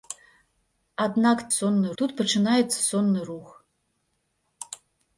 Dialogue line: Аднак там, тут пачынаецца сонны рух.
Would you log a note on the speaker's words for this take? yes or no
yes